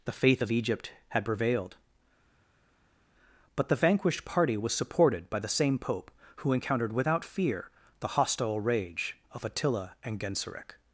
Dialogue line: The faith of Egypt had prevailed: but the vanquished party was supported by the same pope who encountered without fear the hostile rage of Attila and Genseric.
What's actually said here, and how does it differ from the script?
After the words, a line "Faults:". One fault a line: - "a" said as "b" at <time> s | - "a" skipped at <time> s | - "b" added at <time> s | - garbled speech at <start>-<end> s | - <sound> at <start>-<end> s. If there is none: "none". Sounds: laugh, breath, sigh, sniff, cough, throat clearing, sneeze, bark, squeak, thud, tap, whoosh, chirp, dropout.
The faith of Egypt had prevailed: but the vanquished party was supported by the same pope who encountered without fear the hostile rage of Attila and Genseric.
Faults:
none